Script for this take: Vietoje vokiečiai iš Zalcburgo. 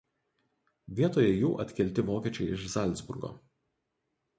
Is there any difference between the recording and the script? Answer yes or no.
yes